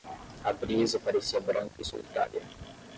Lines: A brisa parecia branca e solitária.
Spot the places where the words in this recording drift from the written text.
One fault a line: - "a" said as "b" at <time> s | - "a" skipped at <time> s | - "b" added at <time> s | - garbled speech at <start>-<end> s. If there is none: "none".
none